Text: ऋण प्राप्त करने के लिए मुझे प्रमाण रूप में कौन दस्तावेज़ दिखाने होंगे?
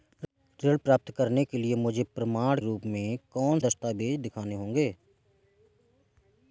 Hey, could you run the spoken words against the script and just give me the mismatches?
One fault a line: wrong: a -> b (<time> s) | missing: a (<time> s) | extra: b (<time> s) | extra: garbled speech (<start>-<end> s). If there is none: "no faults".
no faults